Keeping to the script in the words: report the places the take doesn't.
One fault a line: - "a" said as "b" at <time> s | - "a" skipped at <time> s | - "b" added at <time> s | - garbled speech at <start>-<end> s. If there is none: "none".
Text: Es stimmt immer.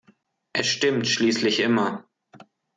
- "schließlich" added at 1.1 s